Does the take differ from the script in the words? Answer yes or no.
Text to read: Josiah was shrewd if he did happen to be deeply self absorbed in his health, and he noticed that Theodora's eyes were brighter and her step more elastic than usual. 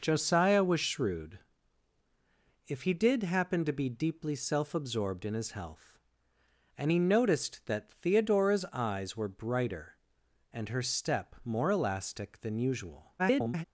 yes